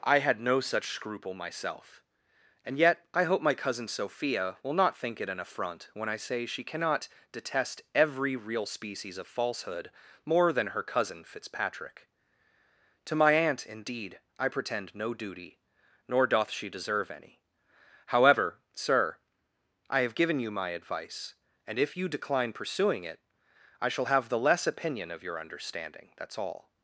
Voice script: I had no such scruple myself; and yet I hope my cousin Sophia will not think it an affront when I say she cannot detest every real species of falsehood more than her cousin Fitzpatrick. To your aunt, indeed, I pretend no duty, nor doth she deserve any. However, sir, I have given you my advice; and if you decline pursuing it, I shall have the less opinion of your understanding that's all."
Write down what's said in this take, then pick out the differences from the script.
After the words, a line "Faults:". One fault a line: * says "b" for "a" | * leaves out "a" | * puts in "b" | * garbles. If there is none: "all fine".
I had no such scruple myself; and yet I hope my cousin Sophia will not think it an affront when I say she cannot detest every real species of falsehood more than her cousin Fitzpatrick. To my aunt, indeed, I pretend no duty, nor doth she deserve any. However, sir, I have given you my advice; and if you decline pursuing it, I shall have the less opinion of your understanding that's all."
Faults:
* says "my" for "your"